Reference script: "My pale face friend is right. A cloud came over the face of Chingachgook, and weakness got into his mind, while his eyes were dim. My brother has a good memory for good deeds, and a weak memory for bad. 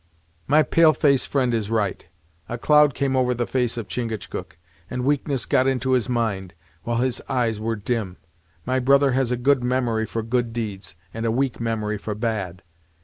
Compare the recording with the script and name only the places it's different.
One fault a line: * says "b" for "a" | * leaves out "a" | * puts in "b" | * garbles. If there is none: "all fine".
all fine